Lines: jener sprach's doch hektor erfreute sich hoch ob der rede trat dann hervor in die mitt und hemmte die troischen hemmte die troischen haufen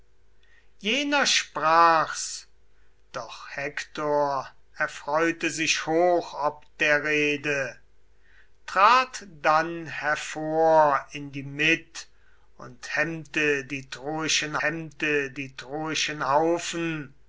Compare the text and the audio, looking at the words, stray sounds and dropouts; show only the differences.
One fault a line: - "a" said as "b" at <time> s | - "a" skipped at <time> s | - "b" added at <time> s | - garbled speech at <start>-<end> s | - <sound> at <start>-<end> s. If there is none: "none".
none